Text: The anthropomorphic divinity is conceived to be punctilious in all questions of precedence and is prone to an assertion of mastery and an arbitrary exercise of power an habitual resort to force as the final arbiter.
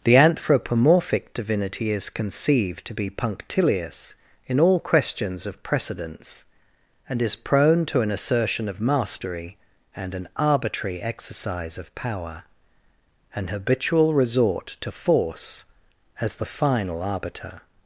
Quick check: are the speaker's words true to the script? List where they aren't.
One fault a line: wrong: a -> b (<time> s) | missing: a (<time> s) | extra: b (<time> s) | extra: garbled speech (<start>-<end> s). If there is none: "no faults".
no faults